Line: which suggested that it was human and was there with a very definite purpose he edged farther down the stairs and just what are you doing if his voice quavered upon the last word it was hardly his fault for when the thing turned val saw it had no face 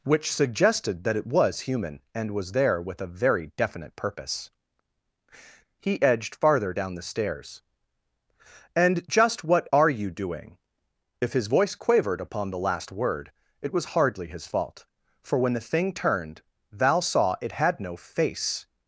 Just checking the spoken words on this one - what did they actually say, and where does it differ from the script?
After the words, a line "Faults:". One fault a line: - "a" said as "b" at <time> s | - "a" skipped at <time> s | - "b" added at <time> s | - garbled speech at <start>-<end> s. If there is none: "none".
which suggested that it was human and was there with a very definite purpose he edged farther down the stairs and just what are you doing if his voice quavered upon the last word it was hardly his fault for when the thing turned val saw it had no face
Faults:
none